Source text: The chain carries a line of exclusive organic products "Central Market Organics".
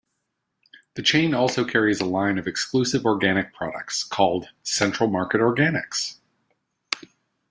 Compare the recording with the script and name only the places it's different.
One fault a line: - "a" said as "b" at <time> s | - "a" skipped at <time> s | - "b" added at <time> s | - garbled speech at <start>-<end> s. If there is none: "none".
- "also" added at 1.3 s
- "called" added at 4.0 s